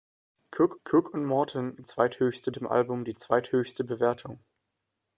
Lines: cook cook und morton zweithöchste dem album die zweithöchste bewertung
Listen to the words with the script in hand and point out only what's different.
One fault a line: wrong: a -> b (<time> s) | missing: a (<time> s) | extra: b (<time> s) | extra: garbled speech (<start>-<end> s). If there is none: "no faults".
no faults